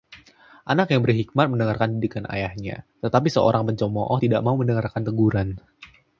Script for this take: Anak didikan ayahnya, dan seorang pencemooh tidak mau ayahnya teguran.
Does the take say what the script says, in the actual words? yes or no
no